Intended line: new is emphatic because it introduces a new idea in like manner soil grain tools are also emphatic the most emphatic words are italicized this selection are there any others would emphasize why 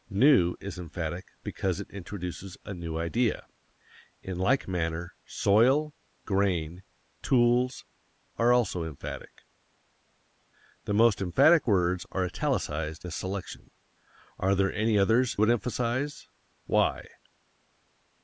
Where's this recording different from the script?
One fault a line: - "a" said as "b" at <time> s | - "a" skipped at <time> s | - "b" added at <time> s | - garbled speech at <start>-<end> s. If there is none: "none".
none